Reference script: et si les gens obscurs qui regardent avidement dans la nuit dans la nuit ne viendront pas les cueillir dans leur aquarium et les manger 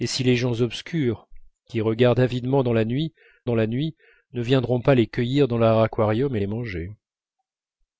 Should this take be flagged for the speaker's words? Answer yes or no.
no